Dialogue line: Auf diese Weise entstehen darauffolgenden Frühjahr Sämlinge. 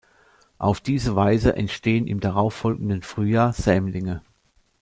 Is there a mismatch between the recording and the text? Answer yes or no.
yes